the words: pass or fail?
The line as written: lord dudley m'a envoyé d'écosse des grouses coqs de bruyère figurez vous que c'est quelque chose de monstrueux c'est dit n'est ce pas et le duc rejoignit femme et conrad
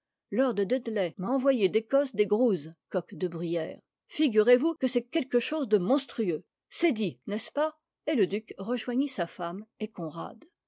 fail